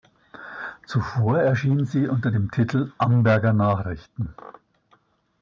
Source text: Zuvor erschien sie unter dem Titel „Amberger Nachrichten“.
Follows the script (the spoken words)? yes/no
yes